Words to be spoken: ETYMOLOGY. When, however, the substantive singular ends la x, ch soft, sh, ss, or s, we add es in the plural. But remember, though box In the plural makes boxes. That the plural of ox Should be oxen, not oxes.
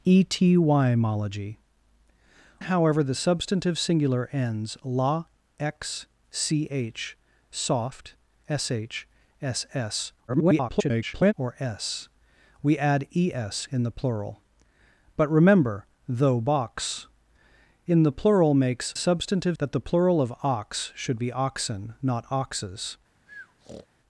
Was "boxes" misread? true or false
true